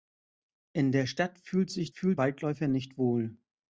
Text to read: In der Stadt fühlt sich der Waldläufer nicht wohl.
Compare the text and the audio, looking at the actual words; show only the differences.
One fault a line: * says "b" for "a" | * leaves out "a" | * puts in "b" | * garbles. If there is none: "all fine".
* says "fühlt" for "der"